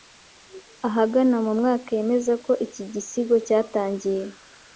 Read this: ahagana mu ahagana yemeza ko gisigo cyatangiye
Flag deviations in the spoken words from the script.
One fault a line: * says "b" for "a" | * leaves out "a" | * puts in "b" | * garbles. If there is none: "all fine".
* says "mwaka" for "ahagana"
* puts in "iki"